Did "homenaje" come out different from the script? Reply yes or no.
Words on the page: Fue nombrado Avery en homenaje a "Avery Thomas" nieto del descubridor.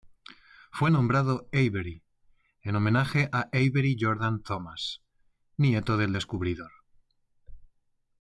no